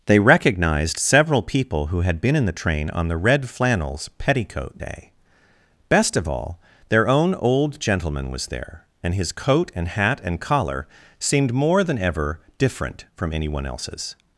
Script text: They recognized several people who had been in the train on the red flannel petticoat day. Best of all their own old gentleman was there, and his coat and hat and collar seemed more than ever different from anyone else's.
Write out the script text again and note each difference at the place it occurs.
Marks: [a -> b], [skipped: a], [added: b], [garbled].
They recognized several people who had been in the train on the red [flannel -> flannels] petticoat day. Best of all their own old gentleman was there, and his coat and hat and collar seemed more than ever different from anyone else's.